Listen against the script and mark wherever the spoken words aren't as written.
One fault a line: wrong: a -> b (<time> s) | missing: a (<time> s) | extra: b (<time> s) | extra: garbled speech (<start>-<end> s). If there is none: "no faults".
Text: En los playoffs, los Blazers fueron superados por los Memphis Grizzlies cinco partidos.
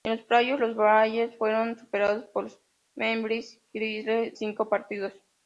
no faults